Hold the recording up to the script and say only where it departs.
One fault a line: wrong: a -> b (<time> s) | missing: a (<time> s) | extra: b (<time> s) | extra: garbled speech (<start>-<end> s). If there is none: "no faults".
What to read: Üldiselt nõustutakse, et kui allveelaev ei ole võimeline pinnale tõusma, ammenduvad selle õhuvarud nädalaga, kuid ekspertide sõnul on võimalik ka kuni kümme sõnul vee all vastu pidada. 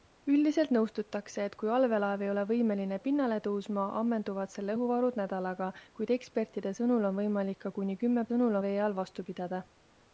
no faults